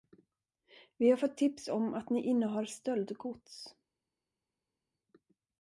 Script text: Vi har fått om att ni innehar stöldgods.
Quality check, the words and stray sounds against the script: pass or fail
fail